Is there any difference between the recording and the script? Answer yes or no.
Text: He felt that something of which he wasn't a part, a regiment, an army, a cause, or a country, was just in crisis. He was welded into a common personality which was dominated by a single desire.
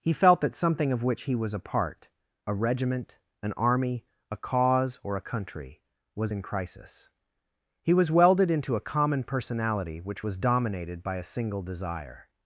yes